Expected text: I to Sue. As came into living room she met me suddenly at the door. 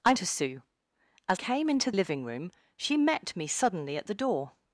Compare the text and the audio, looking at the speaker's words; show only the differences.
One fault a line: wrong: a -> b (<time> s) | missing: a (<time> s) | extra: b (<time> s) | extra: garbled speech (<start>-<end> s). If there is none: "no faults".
no faults